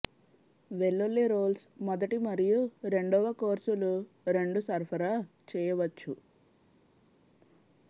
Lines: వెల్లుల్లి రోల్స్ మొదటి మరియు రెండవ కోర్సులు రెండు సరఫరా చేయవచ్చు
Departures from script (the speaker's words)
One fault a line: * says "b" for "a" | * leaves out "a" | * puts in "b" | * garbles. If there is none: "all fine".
all fine